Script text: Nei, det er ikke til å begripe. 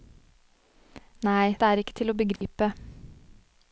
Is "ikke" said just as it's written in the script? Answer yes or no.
yes